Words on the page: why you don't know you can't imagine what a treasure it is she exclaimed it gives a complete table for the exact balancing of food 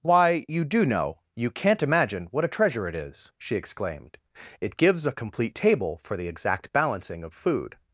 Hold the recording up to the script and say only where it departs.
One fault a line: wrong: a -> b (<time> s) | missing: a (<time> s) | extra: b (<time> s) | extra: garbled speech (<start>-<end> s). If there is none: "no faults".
wrong: don't -> do (0.7 s)